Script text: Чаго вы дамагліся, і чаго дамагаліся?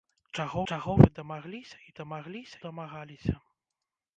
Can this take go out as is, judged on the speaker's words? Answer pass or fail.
fail